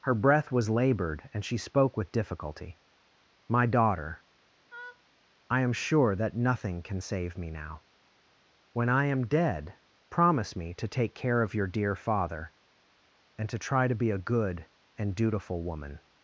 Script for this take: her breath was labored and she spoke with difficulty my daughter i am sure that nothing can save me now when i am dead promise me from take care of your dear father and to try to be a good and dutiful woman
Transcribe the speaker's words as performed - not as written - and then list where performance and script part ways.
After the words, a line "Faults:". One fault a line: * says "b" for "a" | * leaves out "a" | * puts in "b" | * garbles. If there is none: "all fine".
her breath was labored and she spoke with difficulty my daughter i am sure that nothing can save me now when i am dead promise me to take care of your dear father and to try to be a good and dutiful woman
Faults:
* says "to" for "from"